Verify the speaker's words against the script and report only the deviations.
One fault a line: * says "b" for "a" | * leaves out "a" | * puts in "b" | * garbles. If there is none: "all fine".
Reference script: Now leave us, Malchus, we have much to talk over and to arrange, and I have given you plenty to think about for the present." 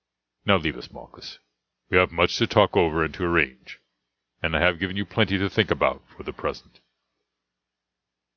all fine